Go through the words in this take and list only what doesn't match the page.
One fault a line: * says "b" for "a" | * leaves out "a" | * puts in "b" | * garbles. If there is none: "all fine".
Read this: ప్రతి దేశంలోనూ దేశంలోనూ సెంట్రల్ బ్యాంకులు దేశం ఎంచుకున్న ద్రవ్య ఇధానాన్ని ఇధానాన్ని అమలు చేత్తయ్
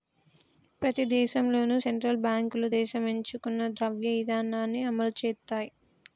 * leaves out "దేశంలోనూ"
* leaves out "ఇధానాన్ని"